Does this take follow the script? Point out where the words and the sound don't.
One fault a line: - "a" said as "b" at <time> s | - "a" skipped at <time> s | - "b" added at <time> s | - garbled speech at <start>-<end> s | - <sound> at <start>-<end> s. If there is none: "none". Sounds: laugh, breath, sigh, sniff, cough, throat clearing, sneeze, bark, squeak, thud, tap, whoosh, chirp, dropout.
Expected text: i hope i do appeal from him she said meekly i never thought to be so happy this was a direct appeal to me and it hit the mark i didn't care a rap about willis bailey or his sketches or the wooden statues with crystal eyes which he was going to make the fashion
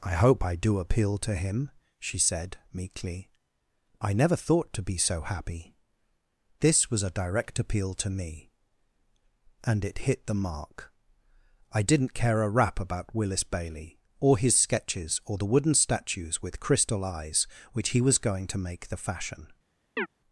- "from" said as "to" at 1.2 s
- chirp at 20.0-20.1 s